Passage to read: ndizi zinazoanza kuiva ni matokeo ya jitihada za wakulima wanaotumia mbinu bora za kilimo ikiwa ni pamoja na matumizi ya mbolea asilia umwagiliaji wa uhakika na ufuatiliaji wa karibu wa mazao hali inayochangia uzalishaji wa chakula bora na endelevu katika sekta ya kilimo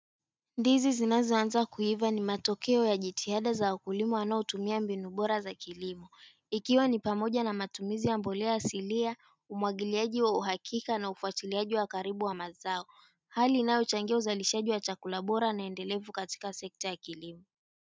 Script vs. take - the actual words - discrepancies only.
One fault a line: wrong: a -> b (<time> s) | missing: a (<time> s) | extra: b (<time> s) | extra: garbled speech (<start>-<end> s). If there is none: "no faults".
no faults